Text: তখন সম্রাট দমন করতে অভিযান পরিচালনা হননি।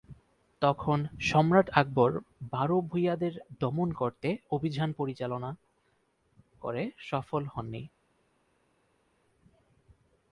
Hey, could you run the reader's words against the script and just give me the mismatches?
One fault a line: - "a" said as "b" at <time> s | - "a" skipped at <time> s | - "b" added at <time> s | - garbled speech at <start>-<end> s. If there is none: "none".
- "আকবর বারো ভূঁইয়াদের" added at 1.7 s
- "করে সফল" added at 6.6 s